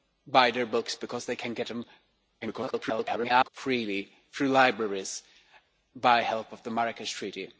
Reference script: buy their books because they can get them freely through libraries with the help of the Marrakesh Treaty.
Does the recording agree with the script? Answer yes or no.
no